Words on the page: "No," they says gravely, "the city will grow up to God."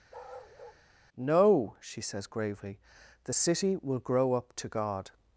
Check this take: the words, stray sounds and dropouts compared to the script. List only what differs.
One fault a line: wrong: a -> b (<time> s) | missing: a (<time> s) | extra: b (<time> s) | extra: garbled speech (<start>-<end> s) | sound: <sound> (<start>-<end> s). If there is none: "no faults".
sound: bark (0.1-0.8 s)
wrong: they -> she (1.8 s)